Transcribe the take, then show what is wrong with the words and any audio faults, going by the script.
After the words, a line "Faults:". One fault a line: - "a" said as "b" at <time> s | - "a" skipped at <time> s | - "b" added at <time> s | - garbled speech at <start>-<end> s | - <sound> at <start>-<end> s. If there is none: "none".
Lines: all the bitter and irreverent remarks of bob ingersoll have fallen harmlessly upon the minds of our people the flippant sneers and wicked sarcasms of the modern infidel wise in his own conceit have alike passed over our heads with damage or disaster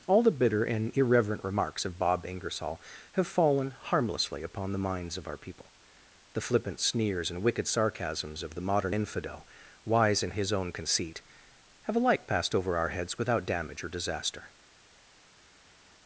all the bitter and irreverent remarks of bob ingersoll have fallen harmlessly upon the minds of our people the flippant sneers and wicked sarcasms of the modern infidel wise in his own conceit have alike passed over our heads without damage or disaster
Faults:
- "with" said as "without" at 13.2 s